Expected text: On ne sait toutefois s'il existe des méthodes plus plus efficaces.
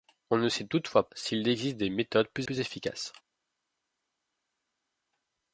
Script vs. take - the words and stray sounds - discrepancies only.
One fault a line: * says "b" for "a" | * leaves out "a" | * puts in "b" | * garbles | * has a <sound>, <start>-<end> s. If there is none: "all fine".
all fine